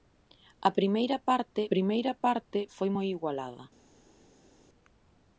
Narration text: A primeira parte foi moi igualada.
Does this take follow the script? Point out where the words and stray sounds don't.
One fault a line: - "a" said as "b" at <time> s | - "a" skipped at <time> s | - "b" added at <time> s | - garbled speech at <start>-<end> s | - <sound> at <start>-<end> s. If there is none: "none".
- "primeira parte" added at 1.7 s